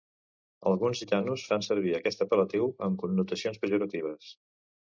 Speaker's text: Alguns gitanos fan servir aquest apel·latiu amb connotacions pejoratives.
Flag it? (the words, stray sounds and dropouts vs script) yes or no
no